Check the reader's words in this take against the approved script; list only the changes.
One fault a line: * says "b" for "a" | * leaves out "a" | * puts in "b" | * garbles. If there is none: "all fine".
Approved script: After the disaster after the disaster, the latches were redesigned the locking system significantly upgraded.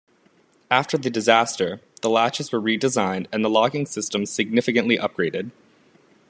* leaves out "after"
* leaves out "disaster the"
* puts in "and"